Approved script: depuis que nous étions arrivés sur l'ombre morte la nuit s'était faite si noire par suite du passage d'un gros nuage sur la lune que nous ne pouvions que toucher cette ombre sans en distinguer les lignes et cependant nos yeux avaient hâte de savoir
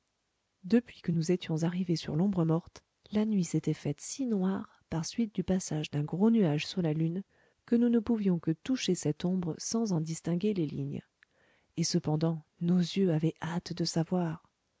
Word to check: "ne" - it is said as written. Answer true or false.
true